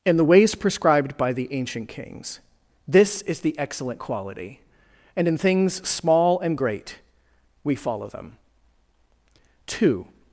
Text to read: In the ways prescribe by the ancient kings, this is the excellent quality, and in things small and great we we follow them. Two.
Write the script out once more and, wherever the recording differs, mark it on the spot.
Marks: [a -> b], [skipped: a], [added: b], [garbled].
In the ways [prescribe -> prescribed] by the ancient kings, this is the excellent quality, and in things small and great we [skipped: we] follow them. Two.